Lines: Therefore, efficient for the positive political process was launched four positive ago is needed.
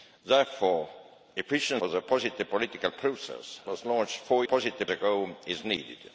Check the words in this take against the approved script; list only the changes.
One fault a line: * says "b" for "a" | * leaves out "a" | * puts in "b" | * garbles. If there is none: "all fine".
all fine